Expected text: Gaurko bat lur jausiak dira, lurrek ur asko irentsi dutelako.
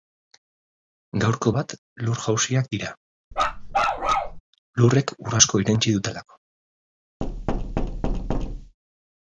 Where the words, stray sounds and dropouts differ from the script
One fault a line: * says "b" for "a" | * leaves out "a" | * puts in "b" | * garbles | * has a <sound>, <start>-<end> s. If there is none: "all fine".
* has a bark, 3.3-4.4 s
* has a thud, 7.2-8.8 s